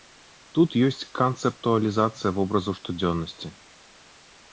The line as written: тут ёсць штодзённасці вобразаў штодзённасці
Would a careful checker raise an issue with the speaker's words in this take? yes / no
yes